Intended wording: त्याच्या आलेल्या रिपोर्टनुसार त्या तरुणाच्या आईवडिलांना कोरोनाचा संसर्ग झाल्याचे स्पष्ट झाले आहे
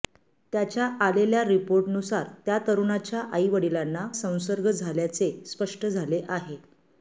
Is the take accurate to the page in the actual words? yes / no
no